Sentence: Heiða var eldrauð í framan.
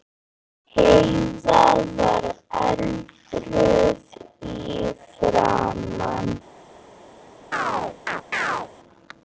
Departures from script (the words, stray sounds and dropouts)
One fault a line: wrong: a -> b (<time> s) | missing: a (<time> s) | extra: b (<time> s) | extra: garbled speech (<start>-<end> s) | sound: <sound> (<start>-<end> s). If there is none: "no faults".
sound: chirp (7.5-8.7 s)